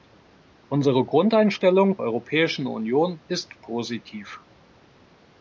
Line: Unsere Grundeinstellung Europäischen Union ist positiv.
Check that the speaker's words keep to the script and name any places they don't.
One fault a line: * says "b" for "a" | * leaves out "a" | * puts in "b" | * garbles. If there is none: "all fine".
all fine